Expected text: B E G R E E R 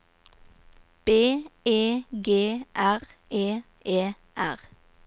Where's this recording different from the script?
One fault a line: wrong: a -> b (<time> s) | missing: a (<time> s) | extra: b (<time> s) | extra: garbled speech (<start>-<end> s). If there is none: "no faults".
no faults